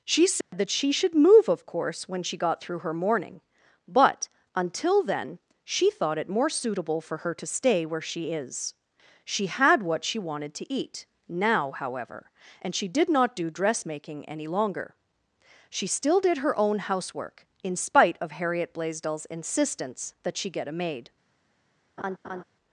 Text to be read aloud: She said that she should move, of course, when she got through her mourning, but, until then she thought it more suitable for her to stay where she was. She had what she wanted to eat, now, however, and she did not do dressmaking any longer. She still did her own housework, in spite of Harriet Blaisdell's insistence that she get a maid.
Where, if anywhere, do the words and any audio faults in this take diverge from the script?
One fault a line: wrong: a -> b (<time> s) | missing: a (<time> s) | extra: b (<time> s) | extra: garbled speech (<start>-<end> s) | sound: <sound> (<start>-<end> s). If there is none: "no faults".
sound: dropout (0.4-0.5 s)
wrong: was -> is (8.3 s)
sound: laugh (22.0-22.4 s)